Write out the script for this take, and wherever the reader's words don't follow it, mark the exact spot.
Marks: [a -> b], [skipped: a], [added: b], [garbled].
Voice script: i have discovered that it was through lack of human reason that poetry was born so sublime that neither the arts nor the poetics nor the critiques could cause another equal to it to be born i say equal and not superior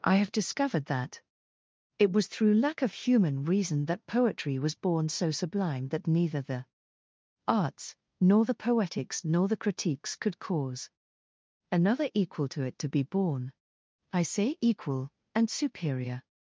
i have discovered that it was through lack of human reason that poetry was born so sublime that neither the arts nor the poetics nor the critiques could cause another equal to it to be born i say equal and [skipped: not] superior